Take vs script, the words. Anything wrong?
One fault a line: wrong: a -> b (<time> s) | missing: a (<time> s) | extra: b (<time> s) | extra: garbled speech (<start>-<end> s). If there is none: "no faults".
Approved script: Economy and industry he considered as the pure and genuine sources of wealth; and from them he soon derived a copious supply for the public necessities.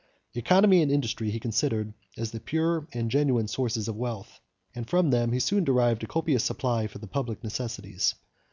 no faults